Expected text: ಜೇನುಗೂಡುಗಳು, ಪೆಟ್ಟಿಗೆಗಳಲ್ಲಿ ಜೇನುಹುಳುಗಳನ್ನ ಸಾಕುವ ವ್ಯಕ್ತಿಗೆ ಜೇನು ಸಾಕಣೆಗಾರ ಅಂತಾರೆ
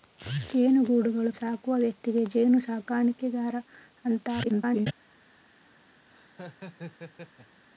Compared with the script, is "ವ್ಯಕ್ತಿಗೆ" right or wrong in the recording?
right